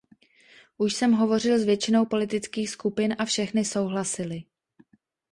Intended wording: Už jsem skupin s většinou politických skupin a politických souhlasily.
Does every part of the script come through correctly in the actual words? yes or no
no